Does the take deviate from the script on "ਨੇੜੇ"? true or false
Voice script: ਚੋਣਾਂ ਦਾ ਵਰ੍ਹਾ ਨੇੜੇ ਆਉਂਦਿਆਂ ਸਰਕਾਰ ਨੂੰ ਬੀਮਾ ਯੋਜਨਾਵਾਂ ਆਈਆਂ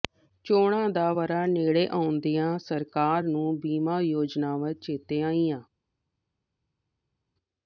false